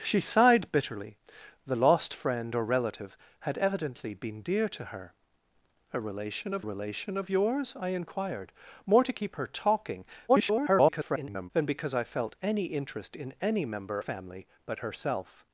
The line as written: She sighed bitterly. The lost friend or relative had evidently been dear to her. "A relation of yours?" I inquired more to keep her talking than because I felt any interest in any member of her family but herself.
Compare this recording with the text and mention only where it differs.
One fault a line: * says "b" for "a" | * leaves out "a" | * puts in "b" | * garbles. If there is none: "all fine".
* puts in "relation of"
* garbles
* leaves out "of her"